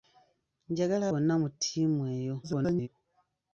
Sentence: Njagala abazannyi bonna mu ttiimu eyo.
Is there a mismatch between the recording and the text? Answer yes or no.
yes